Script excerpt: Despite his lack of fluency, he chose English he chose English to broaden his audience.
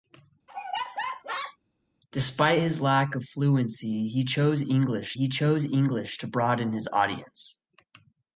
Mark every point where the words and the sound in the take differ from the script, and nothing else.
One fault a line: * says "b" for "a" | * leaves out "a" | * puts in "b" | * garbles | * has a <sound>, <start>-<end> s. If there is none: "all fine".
* has a laugh, 0.5-1.6 s